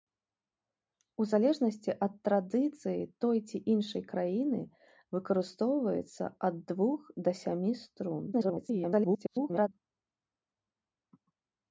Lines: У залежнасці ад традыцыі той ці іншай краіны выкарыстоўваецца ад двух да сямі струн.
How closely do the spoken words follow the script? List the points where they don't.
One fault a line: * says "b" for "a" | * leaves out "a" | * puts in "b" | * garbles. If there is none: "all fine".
* garbles